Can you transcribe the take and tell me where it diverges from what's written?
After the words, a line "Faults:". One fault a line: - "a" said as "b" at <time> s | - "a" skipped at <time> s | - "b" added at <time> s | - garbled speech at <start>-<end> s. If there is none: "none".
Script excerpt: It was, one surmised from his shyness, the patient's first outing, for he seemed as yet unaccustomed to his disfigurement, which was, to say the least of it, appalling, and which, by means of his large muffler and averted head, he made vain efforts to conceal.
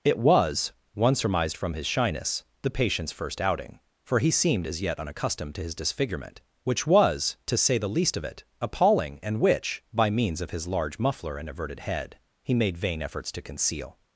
It was, one surmised from his shyness, the patient's first outing, for he seemed as yet unaccustomed to his disfigurement, which was, to say the least of it, appalling, and which, by means of his large muffler and averted head, he made vain efforts to conceal.
Faults:
none